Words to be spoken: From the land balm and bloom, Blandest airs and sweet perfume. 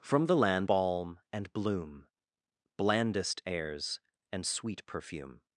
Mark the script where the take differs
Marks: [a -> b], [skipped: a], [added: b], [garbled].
From the land balm and bloom, Blandest airs and sweet perfume.